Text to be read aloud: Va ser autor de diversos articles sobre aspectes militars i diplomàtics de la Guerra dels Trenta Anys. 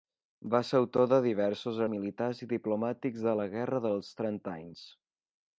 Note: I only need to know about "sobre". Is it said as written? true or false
false